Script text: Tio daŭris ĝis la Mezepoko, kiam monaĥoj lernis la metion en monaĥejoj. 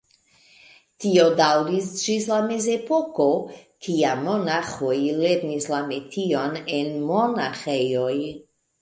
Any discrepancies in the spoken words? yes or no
no